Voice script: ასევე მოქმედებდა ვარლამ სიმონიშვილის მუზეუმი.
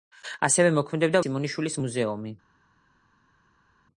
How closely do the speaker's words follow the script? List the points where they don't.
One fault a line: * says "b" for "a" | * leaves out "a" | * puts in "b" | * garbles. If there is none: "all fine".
* leaves out "ვარლამ"